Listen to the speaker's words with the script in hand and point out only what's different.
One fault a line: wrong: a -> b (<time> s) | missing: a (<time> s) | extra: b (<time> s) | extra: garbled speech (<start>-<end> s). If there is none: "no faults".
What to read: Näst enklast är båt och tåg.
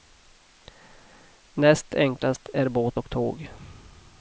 no faults